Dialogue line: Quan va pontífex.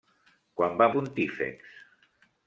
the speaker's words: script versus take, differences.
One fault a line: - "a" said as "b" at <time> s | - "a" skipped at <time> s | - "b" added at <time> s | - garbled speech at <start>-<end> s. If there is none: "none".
none